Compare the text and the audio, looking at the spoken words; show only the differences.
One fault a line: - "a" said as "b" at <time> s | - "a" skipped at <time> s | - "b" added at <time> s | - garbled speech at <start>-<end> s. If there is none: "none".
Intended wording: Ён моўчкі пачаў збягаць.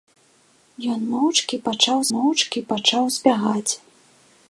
- "моўчкі пачаў" added at 2.1 s